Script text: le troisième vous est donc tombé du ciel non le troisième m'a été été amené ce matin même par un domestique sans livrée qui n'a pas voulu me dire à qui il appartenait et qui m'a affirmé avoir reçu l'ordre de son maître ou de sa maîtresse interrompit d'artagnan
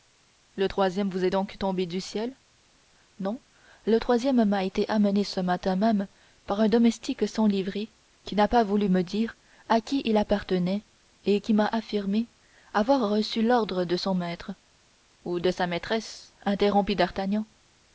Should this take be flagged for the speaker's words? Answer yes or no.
yes